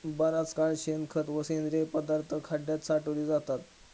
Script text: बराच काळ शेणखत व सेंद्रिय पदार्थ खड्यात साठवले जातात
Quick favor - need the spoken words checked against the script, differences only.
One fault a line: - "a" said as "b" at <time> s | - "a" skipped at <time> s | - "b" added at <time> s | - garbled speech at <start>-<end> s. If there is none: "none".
none